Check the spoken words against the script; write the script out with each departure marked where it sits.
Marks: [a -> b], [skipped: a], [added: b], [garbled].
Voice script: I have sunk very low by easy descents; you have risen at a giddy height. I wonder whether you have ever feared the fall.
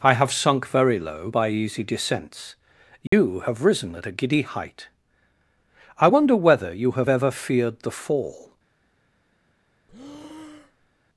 I have sunk very low by easy descents; you have risen at a giddy height. I wonder whether you have ever feared the fall.